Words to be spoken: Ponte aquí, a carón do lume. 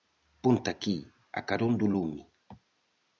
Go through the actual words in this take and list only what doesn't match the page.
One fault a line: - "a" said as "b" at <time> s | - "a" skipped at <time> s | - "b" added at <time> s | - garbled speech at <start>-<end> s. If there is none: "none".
none